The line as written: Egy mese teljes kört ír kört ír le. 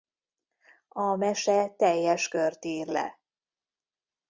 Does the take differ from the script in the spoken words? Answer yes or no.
yes